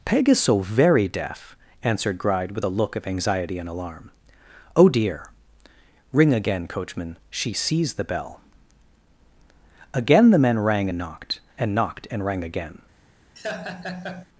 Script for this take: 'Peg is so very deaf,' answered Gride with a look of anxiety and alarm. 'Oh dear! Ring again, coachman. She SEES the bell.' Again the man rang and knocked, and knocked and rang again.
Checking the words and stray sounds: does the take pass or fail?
fail